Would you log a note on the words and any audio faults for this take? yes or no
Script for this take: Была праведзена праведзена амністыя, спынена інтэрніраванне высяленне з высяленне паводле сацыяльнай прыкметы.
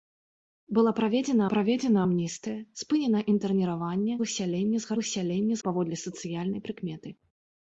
no